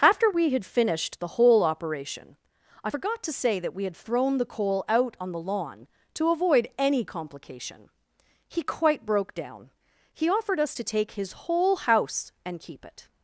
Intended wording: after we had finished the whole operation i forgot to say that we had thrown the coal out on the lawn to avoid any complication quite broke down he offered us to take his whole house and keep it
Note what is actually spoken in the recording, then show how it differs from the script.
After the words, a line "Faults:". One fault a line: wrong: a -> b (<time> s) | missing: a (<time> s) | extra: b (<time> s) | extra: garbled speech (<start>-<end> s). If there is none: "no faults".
after we had finished the whole operation i forgot to say that we had thrown the coal out on the lawn to avoid any complication he quite broke down he offered us to take his whole house and keep it
Faults:
extra: he (8.5 s)